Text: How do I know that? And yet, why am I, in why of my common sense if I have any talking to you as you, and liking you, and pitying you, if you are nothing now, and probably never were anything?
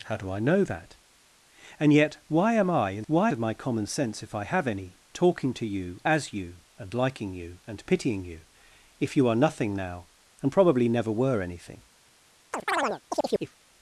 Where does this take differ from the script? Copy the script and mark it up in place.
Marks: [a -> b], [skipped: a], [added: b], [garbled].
How do I know that? And yet, why am I, in why of my common sense if I have any talking to you as you, and liking you, and pitying you, if you are nothing now, and probably never were anything?